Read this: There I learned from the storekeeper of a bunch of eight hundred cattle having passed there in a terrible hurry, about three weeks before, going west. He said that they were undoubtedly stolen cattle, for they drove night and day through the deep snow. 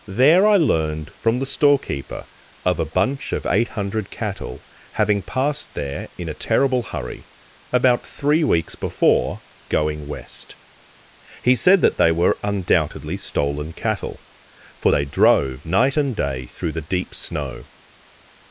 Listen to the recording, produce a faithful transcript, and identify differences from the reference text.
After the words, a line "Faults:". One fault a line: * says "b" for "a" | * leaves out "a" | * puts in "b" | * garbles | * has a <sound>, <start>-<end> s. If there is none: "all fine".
There I learned from the storekeeper of a bunch of eight hundred cattle having passed there in a terrible hurry, about three weeks before, going west. He said that they were undoubtedly stolen cattle, for they drove night and day through the deep snow.
Faults:
all fine